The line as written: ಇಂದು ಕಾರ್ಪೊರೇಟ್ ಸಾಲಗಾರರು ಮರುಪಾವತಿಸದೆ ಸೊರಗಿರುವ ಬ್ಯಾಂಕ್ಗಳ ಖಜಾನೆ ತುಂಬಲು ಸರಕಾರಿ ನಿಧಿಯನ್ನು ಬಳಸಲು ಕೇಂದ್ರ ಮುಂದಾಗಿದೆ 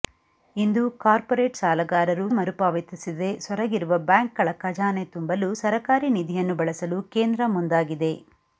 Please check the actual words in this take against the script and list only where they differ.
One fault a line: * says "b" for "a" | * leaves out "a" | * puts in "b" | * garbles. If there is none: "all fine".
all fine